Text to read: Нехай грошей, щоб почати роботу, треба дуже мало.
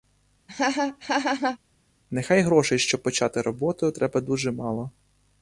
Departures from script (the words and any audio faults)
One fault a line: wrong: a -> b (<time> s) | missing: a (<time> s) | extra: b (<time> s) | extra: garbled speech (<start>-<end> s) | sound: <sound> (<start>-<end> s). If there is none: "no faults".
sound: laugh (0.5-1.6 s)